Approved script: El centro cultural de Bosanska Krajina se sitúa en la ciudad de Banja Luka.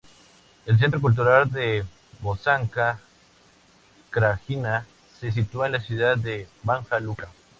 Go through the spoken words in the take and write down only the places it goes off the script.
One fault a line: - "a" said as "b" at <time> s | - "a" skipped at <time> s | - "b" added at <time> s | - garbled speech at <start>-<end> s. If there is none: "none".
none